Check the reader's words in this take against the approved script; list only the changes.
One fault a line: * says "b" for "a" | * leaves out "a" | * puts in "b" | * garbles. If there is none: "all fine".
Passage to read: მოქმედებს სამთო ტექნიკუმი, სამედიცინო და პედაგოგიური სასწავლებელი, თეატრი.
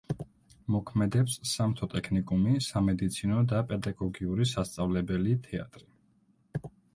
all fine